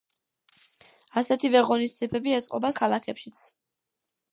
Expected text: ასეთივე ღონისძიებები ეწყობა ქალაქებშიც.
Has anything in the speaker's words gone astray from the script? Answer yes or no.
no